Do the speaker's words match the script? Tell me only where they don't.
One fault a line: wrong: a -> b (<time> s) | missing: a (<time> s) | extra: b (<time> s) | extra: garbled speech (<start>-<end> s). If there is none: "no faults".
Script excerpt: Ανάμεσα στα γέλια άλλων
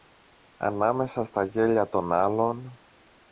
extra: των (1.9 s)